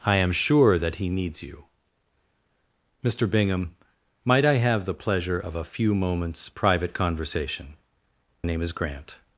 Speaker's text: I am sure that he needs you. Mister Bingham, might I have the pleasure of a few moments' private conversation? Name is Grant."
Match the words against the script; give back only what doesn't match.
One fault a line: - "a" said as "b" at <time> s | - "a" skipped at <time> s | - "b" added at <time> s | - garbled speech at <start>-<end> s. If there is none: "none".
none